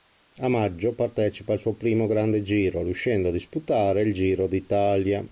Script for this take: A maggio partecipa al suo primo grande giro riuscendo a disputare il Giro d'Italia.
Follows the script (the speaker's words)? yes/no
yes